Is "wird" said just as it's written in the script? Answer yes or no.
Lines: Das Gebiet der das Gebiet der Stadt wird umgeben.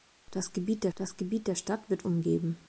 yes